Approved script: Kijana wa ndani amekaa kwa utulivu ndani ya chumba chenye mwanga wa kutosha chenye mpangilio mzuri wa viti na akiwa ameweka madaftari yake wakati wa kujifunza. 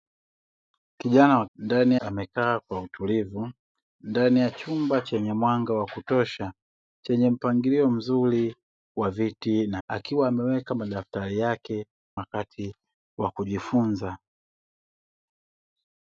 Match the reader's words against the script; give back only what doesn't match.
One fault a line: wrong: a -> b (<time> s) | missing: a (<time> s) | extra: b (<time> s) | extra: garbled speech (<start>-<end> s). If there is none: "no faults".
no faults